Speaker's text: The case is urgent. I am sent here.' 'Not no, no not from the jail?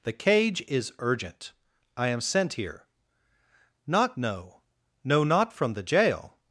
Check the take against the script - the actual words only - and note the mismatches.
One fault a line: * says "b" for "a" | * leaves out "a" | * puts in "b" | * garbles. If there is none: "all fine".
* says "cage" for "case"